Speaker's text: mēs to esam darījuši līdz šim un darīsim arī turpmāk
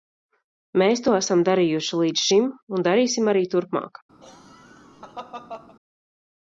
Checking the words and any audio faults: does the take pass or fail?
fail